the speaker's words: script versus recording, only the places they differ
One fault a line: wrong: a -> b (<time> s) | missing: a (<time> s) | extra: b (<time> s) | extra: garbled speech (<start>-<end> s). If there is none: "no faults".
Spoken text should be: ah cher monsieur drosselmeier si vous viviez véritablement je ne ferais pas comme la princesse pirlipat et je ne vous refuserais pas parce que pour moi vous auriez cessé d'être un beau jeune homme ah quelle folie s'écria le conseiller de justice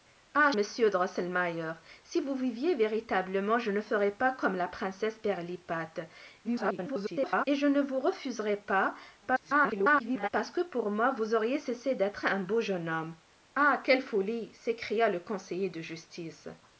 missing: cher (0.5 s)
extra: garbled speech (6.4-7.5 s)
extra: garbled speech (9.2-10.3 s)